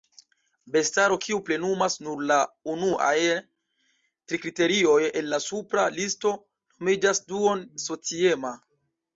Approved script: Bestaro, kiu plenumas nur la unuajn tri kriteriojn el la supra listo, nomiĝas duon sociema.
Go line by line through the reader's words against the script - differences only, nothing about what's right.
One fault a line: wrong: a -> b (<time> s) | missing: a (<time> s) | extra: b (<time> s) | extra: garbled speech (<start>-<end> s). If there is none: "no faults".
no faults